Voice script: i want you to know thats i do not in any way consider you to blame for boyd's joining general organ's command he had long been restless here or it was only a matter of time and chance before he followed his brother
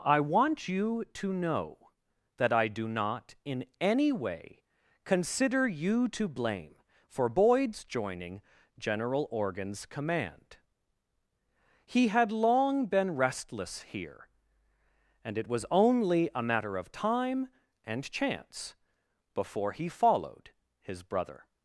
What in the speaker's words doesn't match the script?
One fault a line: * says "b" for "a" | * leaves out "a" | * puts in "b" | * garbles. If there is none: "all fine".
* says "that" for "thats"
* says "and" for "or"